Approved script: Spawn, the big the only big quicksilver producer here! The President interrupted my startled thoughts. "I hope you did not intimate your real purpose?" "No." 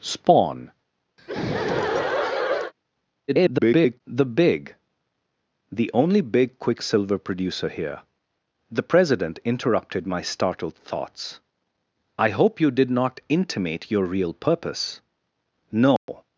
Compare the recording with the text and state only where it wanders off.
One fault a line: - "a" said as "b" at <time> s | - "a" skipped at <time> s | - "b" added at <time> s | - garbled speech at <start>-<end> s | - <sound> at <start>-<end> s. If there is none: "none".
- laugh at 1.2-2.7 s
- garbled speech at 3.3-4.0 s
- dropout at 16.0-16.1 s